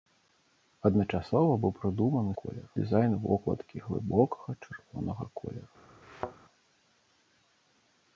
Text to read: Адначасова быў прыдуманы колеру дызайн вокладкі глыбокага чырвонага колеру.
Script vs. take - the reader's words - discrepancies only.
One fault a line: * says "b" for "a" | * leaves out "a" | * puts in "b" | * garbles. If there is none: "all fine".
all fine